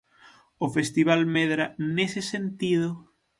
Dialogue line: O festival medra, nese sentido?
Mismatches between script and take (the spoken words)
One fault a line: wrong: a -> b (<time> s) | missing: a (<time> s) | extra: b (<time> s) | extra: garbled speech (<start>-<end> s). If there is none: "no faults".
no faults